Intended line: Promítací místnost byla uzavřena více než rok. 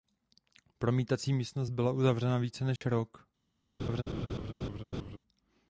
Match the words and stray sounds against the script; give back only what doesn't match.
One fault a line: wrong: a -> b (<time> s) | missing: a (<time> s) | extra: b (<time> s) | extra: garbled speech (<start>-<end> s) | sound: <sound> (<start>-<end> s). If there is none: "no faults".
sound: dropout (2.8-2.8 s)
sound: laugh (3.8-5.2 s)